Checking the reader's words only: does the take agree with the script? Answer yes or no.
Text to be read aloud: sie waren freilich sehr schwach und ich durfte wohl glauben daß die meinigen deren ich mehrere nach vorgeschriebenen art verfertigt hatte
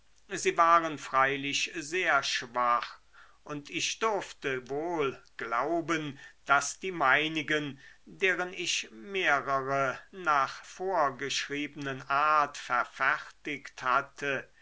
yes